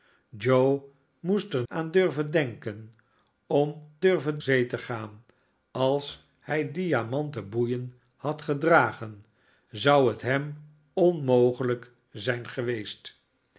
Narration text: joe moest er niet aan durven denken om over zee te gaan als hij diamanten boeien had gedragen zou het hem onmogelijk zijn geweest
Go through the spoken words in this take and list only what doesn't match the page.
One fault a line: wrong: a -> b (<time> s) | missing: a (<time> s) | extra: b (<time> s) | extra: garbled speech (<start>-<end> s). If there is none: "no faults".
missing: niet (1.6 s)
wrong: over -> durven (4.0 s)